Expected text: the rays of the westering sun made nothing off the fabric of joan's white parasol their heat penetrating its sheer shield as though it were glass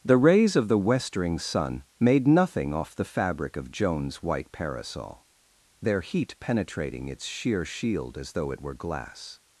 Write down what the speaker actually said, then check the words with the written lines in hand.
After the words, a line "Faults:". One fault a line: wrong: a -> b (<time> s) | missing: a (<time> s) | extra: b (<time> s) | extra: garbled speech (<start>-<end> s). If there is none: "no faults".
the rays of the westering sun made nothing off the fabric of joan's white parasol their heat penetrating its sheer shield as though it were glass
Faults:
no faults